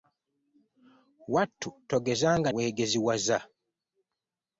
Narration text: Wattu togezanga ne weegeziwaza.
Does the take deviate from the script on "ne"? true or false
true